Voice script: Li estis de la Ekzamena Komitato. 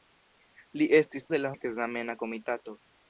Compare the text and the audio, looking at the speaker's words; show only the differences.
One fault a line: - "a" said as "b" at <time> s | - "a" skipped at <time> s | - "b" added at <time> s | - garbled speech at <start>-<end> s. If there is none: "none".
none